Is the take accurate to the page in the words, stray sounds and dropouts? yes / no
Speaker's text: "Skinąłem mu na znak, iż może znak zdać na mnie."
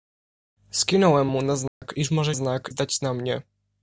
no